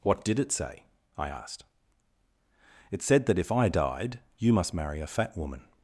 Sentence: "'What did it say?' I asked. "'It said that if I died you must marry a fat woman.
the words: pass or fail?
pass